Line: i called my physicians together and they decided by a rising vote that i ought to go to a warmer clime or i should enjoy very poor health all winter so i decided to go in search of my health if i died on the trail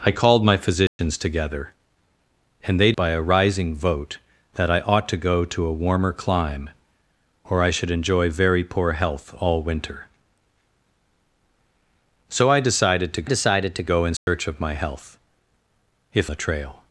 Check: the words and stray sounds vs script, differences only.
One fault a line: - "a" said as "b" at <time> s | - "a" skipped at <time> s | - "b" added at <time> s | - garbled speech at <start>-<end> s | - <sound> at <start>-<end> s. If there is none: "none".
- dropout at 0.9-1.0 s
- "decided" skipped at 2.9 s
- "decided to" added at 13.2 s
- dropout at 14.2-14.3 s
- "i died on" skipped at 16.3 s